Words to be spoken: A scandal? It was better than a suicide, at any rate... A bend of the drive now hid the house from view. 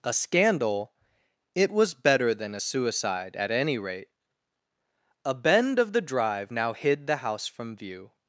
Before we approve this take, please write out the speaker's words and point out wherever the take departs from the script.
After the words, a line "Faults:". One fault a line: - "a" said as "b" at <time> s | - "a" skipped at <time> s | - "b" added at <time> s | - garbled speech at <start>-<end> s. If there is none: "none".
A scandal? It was better than a suicide, at any rate... A bend of the drive now hid the house from view.
Faults:
none